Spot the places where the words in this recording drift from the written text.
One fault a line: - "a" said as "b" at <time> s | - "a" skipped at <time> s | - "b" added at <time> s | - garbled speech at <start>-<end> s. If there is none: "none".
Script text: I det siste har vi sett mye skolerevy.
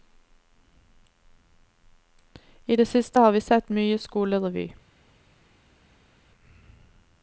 none